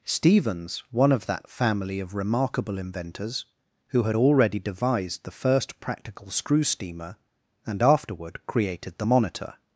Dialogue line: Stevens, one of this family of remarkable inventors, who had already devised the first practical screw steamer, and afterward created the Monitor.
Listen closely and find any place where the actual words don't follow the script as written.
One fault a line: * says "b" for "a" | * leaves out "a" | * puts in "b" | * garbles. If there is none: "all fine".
* says "that" for "this"